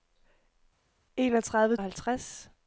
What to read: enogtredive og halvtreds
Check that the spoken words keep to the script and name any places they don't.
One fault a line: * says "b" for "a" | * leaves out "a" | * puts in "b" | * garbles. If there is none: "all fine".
all fine